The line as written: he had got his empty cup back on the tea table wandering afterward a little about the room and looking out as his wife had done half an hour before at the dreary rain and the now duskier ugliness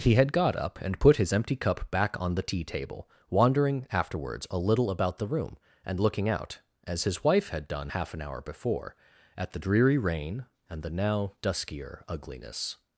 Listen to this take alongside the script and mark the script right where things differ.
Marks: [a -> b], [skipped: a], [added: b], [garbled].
he had got [added: up and put] his empty cup back on the tea table wandering [afterward -> afterwards] a little about the room and looking out as his wife had done half an hour before at the dreary rain and the now duskier ugliness